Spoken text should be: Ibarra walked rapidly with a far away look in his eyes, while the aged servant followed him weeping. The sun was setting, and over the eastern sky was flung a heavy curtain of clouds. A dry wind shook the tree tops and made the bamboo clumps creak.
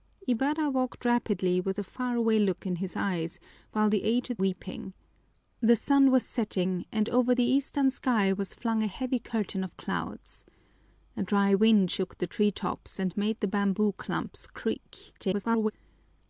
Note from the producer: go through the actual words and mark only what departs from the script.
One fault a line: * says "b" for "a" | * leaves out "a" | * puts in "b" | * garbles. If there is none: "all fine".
* leaves out "servant followed him"
* garbles